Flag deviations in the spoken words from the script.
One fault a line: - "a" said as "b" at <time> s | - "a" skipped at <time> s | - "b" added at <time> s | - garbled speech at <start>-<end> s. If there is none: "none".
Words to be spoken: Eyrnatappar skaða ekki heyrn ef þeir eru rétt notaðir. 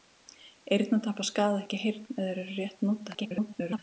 - garbled speech at 3.1-3.8 s